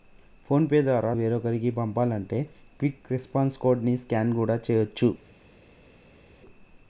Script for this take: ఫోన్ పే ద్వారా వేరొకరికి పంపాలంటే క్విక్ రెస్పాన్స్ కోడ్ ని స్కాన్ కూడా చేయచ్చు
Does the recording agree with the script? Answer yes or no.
yes